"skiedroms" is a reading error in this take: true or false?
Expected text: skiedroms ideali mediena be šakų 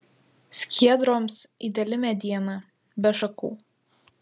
false